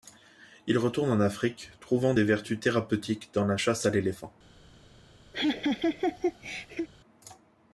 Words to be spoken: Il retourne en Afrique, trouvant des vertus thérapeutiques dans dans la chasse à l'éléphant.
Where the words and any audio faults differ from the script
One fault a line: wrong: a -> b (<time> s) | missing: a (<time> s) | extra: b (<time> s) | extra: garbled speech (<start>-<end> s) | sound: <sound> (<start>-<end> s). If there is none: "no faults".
missing: dans (3.5 s)
sound: laugh (5.3-6.9 s)